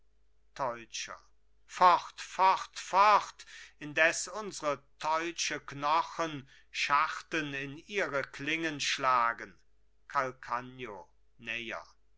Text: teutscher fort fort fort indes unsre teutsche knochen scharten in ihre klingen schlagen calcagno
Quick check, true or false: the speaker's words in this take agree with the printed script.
true